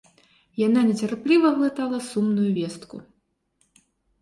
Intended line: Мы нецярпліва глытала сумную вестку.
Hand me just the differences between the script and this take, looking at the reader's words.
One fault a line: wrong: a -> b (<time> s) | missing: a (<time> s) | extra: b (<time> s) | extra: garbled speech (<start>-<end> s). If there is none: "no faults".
wrong: Мы -> Яна (0.7 s)